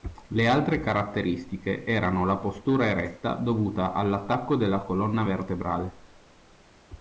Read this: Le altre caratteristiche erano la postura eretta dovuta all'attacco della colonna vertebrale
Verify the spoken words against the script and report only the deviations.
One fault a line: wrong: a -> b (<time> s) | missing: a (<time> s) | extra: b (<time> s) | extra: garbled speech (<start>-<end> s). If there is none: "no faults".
no faults